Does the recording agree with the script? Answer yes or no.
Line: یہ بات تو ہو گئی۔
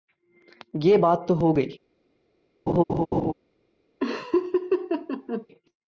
yes